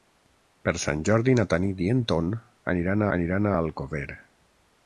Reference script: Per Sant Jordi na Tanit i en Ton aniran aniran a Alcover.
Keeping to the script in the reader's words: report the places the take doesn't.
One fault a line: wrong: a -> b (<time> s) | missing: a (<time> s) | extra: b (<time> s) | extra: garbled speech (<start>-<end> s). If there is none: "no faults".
no faults